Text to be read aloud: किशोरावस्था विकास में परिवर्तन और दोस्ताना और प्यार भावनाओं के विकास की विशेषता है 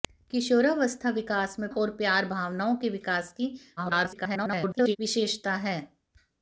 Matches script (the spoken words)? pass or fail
fail